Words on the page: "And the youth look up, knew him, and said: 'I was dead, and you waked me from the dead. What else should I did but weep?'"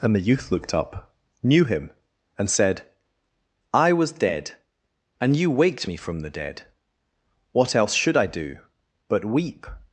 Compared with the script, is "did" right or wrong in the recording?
wrong